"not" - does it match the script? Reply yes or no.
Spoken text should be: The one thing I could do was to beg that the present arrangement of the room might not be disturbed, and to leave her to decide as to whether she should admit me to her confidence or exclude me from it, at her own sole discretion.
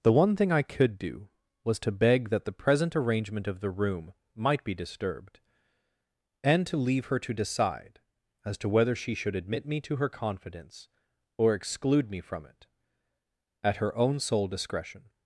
no